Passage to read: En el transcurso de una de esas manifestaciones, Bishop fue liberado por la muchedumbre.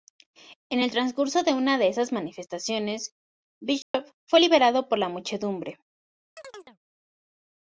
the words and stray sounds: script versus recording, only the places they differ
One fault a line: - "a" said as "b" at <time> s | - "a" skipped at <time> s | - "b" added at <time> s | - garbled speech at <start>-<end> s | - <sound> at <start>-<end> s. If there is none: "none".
- dropout at 3.8-3.9 s
- chirp at 6.4-6.8 s